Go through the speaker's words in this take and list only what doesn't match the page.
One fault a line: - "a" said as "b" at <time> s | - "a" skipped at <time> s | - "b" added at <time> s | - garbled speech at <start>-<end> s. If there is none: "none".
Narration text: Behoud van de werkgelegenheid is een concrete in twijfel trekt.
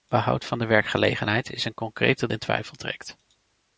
none